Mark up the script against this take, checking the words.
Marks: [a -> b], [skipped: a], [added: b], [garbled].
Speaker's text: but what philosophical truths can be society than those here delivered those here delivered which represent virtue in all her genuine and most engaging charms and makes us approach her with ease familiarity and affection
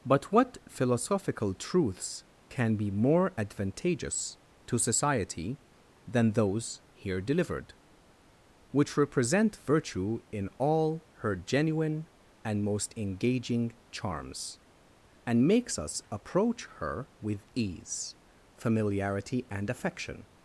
but what philosophical truths can be [society than those here delivered -> more advantageous to society than] those here delivered which represent virtue in all her genuine and most engaging charms and makes us approach her with ease familiarity and affection